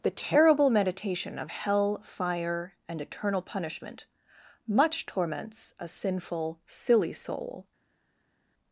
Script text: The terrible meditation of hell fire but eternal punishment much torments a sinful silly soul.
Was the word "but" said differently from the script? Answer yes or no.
yes